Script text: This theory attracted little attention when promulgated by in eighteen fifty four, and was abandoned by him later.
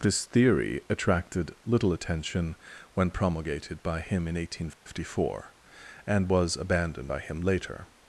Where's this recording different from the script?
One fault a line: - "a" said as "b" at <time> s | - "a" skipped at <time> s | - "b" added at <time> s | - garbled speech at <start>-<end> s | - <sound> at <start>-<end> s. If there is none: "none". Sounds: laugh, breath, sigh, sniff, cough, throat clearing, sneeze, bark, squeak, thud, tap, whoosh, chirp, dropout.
- "him" added at 4.0 s
- dropout at 4.7-4.9 s